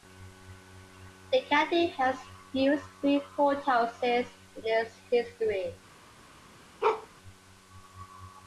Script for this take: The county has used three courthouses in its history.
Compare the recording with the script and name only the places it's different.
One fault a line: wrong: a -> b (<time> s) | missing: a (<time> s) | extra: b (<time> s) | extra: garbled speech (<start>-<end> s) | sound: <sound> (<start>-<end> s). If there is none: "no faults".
sound: bark (6.8-7.1 s)